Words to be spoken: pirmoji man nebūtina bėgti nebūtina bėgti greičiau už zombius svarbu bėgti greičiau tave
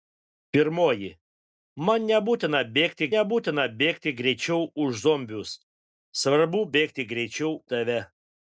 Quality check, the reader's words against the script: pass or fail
pass